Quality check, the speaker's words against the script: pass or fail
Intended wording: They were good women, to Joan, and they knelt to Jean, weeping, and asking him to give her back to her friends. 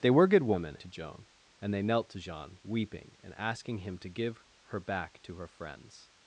pass